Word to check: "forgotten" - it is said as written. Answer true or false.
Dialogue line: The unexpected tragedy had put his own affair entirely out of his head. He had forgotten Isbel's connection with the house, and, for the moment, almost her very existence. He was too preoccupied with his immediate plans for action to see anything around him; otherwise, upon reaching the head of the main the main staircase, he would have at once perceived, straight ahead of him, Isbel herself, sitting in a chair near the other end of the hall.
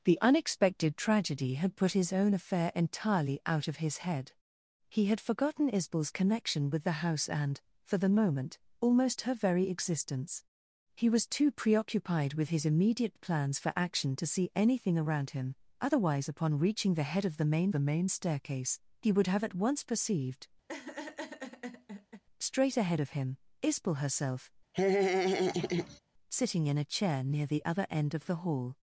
true